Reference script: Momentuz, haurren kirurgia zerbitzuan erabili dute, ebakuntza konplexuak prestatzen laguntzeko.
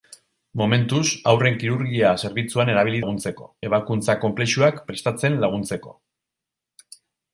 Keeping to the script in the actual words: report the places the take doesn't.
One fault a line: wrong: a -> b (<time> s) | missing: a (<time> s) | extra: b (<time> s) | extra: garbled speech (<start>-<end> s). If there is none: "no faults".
wrong: dute -> laguntzeko (3.0 s)